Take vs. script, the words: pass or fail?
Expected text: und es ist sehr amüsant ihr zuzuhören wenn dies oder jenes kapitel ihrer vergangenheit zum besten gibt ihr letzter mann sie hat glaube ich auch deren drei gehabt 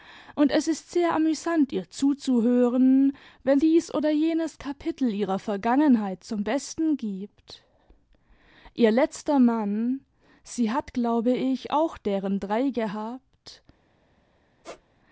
pass